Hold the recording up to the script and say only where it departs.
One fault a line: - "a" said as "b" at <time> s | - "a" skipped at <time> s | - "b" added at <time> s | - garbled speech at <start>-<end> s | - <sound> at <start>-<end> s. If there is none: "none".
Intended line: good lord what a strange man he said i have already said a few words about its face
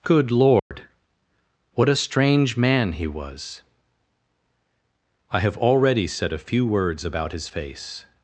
- dropout at 0.6-0.7 s
- "said" said as "was" at 3.1 s
- "its" said as "his" at 7.3 s